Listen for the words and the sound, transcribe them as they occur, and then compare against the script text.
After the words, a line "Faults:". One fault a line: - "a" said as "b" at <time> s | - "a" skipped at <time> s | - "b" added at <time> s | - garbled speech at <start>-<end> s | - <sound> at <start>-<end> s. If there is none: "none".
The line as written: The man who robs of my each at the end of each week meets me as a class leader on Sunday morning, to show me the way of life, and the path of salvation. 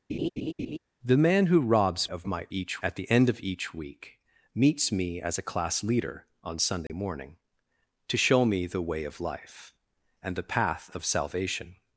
The man who robs of my each at the end of each week meets me as a class leader on Sunday morning, to show me the way of life, and the path of salvation.
Faults:
- laugh at 0.1-0.8 s
- dropout at 6.9-6.9 s